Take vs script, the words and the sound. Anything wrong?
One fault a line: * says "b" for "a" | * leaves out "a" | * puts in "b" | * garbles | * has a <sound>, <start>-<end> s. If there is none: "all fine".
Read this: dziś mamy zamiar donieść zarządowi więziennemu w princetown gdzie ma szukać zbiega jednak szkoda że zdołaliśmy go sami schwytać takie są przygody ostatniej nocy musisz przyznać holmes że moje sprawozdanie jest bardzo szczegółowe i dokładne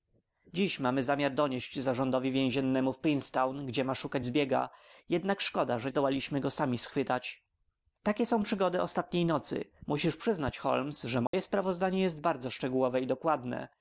* has a dropout, 11.3-11.3 s